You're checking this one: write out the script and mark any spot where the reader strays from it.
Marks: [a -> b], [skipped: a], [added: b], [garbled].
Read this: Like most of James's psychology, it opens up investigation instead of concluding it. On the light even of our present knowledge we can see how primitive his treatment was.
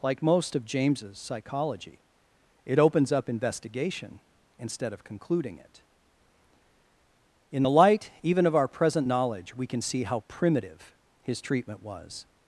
Like most of James's psychology, it opens up investigation instead of concluding it. [On -> In] the light even of our present knowledge we can see how primitive his treatment was.